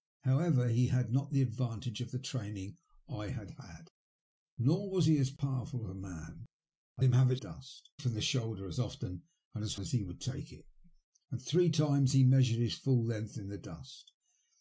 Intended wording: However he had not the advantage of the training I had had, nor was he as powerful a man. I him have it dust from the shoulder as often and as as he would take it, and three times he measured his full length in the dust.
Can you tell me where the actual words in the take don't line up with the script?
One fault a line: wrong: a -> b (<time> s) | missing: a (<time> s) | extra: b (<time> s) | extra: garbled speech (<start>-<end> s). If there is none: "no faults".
no faults